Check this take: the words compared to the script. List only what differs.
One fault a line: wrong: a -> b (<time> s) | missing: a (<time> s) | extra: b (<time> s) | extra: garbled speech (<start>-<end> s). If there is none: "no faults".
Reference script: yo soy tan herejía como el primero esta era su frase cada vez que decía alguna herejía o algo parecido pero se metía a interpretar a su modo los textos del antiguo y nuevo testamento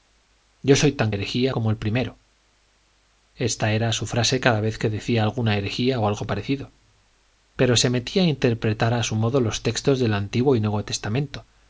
no faults